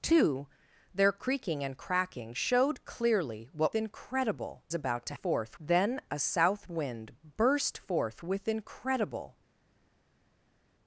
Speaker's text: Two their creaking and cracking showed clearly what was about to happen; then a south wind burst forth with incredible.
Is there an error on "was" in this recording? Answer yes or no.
yes